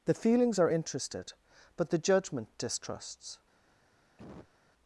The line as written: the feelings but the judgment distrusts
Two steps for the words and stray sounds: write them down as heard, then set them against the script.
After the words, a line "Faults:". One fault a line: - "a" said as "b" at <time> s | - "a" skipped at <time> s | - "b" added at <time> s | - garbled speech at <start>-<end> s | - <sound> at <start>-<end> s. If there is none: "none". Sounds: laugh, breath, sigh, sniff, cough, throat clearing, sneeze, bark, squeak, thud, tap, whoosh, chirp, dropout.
the feelings are interested but the judgment distrusts
Faults:
- "are interested" added at 0.6 s
- cough at 4.2-4.6 s